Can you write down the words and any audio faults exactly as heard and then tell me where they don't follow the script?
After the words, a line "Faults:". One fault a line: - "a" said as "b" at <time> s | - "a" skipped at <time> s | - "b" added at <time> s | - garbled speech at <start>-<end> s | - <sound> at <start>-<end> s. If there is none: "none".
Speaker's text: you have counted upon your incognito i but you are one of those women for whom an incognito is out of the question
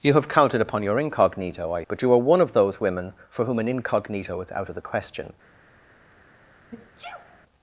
you have counted upon your incognito i but you are one of those women for whom an incognito is out of the question
Faults:
- sneeze at 6.7-7.4 s